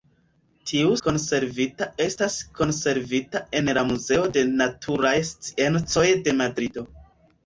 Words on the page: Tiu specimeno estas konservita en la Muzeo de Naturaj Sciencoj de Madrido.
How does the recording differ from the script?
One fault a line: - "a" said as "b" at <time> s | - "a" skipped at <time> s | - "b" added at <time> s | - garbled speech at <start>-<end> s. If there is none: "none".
- "specimeno" said as "konservita" at 1.1 s